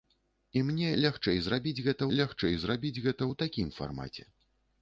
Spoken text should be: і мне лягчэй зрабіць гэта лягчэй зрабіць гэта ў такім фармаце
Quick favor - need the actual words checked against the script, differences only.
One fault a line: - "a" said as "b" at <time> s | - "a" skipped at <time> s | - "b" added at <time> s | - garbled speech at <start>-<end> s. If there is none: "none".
none